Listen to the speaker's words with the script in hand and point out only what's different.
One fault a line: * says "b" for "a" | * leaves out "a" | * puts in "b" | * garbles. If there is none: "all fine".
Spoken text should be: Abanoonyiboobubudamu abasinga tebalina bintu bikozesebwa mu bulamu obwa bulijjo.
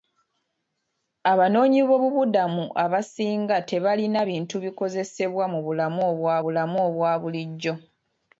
* puts in "bulamu obwa"